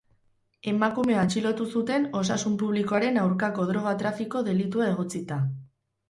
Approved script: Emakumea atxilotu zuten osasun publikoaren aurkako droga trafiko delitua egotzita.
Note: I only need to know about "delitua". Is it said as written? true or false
true